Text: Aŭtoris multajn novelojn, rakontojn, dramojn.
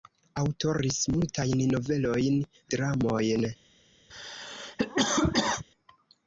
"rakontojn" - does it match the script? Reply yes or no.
no